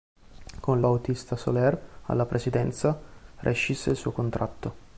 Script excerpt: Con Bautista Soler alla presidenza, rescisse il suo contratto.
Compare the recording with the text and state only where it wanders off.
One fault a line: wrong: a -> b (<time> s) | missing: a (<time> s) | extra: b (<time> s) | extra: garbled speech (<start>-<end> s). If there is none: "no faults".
no faults